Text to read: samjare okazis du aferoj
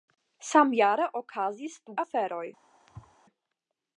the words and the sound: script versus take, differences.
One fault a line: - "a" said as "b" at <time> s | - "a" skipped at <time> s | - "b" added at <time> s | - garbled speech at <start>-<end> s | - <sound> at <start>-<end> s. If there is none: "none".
- thud at 2.9-3.2 s